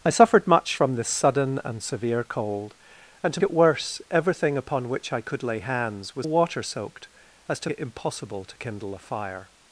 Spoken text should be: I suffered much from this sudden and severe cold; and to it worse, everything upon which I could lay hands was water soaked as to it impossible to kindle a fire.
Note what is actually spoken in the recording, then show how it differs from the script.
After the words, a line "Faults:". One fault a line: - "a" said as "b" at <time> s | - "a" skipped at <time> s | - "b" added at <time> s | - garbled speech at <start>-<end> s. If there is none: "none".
I suffered much from this sudden and severe cold; and to it worse, everything upon which I could lay hands was water soaked as to it impossible to kindle a fire.
Faults:
none